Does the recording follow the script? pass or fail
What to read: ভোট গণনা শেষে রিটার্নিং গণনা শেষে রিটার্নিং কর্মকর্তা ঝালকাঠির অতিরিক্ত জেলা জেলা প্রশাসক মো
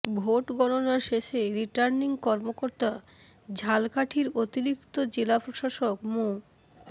fail